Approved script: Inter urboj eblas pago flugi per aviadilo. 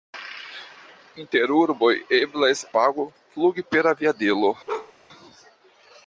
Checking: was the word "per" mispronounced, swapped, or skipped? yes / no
no